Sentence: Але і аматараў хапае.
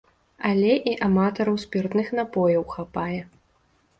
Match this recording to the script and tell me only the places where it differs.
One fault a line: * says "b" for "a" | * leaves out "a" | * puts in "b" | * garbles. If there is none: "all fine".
* puts in "спіртных напояў"